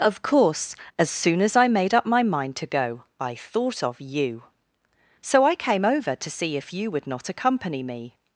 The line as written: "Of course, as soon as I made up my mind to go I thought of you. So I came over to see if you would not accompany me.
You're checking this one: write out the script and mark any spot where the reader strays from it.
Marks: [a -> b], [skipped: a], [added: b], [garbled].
"Of course, as soon as I made up my mind to go I thought of you. So I came over to see if you would not accompany me.